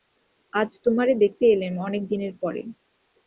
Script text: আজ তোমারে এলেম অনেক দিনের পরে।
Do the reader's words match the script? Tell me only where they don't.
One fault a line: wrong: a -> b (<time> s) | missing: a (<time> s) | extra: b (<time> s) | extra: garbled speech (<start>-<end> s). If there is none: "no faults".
extra: দেখতে (1.2 s)